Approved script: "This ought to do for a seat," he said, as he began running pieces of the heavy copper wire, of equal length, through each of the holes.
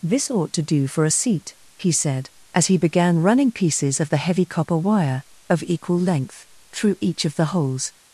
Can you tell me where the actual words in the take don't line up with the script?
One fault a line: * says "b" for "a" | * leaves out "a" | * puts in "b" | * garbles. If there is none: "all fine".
all fine